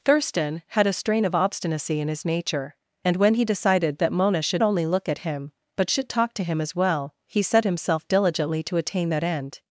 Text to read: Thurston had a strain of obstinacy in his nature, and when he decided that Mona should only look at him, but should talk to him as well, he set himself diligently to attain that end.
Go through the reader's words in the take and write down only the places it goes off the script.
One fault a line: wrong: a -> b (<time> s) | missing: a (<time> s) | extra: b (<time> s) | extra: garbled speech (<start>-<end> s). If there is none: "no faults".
no faults